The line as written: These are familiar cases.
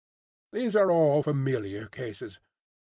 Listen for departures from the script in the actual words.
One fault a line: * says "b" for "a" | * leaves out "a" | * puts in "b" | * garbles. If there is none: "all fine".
* puts in "all"